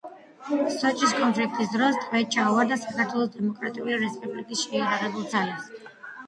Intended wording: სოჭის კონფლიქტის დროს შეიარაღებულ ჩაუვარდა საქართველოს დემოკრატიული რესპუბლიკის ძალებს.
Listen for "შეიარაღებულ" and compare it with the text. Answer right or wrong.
wrong